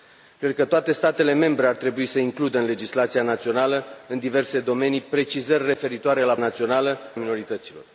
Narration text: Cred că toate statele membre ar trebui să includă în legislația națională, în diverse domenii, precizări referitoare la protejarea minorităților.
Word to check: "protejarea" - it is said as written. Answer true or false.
false